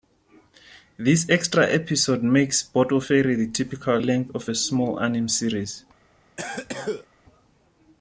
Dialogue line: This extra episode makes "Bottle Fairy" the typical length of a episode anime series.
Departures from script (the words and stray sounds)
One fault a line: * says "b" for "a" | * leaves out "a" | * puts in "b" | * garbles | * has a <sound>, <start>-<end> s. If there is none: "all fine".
* says "small" for "episode"
* has a cough, 6.4-7.1 s